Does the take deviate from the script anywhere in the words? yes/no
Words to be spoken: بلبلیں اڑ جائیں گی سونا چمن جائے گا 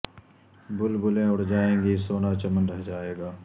yes